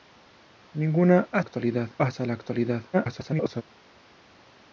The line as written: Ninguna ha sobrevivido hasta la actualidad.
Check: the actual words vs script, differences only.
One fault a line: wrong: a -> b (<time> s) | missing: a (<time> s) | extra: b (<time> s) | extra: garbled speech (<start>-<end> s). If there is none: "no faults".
wrong: sobrevivido -> actualidad (1.4 s)
extra: garbled speech (2.9-3.6 s)